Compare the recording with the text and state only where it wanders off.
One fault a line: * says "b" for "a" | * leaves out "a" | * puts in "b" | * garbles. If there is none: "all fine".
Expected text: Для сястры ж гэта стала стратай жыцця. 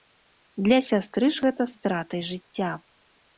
* leaves out "стала"